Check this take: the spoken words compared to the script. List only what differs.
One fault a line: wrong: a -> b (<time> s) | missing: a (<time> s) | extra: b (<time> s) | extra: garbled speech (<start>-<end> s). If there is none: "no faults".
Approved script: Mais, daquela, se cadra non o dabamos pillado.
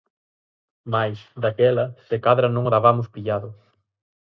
no faults